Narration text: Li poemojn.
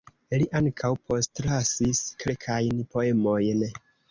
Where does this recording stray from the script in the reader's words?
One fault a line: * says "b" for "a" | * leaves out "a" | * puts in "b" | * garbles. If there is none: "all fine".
* puts in "ankaŭ postlasis kelkajn"